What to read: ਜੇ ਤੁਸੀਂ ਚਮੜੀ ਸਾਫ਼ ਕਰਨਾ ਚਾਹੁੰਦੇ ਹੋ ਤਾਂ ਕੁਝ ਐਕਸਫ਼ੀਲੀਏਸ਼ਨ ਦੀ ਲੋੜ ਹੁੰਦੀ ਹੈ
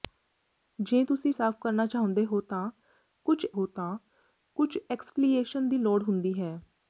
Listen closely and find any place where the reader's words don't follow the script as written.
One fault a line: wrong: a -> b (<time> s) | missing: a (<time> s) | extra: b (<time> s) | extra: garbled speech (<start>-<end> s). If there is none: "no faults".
missing: ਚਮੜੀ (1.3 s)
extra: ਹੋ ਤਾਂ ਕੁਝ (3.5 s)